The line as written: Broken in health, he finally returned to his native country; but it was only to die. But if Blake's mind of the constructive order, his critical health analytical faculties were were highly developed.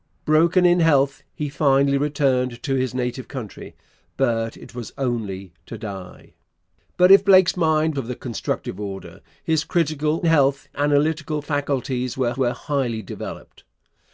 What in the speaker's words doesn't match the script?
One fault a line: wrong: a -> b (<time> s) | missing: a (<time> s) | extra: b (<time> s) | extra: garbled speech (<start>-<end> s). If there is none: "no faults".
no faults